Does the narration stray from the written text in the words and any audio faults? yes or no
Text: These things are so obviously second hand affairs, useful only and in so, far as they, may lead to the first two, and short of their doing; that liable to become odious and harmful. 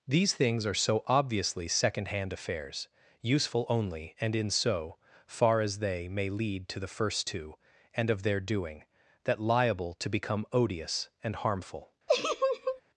yes